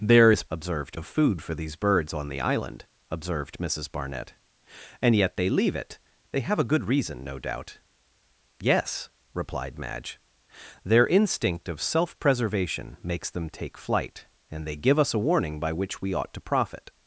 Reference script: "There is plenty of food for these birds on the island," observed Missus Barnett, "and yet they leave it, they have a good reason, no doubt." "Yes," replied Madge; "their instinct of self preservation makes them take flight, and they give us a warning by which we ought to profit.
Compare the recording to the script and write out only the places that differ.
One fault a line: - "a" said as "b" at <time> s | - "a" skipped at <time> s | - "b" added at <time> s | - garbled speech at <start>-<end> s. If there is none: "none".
- "plenty" said as "observed" at 0.5 s